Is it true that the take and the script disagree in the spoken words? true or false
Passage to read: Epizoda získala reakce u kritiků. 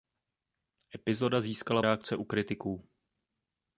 false